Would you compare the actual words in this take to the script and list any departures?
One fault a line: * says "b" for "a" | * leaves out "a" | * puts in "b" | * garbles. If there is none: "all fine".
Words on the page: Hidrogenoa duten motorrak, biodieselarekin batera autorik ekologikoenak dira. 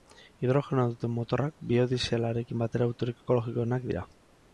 all fine